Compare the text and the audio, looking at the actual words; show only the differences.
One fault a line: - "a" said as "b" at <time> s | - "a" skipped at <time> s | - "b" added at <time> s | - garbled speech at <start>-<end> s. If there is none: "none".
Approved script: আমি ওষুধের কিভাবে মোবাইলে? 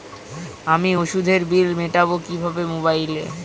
- "বিল মেটাব" added at 1.5 s